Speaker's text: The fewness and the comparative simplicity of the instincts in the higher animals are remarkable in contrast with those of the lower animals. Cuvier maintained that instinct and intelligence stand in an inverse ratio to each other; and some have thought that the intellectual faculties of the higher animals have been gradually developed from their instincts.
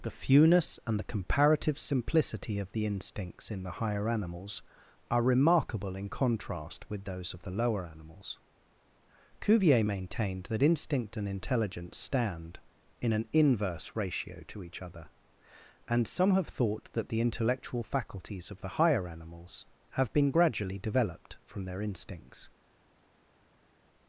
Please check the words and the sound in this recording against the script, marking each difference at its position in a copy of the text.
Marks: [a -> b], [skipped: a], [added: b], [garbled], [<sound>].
The fewness and the comparative simplicity of the instincts in the higher animals are remarkable in contrast with those of the lower animals. Cuvier maintained that instinct and intelligence stand in an inverse ratio to each other; and some have thought that the intellectual faculties of the higher animals have been gradually developed from their instincts.